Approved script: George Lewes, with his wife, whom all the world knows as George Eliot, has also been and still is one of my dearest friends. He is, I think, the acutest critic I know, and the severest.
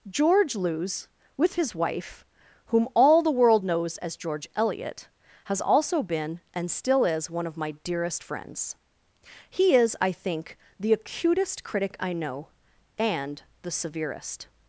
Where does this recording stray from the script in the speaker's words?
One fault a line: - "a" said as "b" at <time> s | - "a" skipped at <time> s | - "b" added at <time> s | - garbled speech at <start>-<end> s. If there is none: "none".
none